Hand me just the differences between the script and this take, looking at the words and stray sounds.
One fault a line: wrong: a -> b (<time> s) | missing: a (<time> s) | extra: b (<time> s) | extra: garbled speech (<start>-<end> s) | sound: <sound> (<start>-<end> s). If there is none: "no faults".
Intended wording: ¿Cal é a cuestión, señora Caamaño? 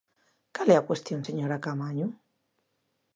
no faults